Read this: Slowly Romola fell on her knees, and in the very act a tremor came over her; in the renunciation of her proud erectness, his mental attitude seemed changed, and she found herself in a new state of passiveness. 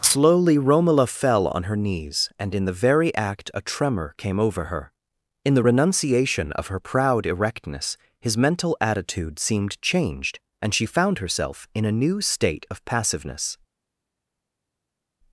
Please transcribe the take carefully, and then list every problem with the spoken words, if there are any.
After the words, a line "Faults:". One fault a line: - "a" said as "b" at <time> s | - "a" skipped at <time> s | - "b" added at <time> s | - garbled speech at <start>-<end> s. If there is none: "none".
Slowly Romola fell on her knees, and in the very act a tremor came over her; in the renunciation of her proud erectness, his mental attitude seemed changed, and she found herself in a new state of passiveness.
Faults:
none